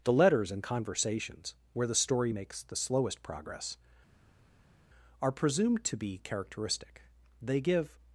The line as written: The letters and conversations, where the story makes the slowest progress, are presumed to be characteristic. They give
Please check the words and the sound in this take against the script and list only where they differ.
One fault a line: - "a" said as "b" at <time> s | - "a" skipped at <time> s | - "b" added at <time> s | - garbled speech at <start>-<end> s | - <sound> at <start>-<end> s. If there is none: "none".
none